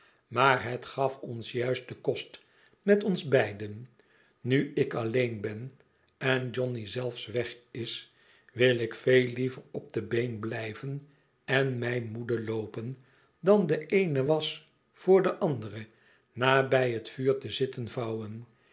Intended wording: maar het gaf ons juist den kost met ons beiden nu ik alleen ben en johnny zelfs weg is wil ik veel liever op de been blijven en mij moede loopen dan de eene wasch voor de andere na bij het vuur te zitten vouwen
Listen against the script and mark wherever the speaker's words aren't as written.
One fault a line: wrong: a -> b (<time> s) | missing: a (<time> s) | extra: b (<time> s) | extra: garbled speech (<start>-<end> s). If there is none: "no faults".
no faults